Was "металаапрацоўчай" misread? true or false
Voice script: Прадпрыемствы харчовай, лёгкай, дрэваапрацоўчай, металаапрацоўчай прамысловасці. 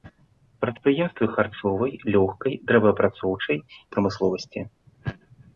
true